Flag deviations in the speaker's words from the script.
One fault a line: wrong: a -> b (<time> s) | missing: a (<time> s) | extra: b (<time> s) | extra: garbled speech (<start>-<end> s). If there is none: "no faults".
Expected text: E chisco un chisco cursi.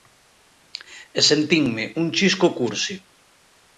wrong: chisco -> sentinme (1.3 s)